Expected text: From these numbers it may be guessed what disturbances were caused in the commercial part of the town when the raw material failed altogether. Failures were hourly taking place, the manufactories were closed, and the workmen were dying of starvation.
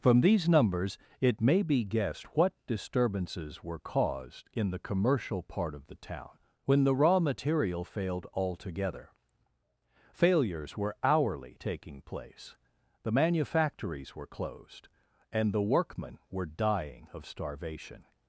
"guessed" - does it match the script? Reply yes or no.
yes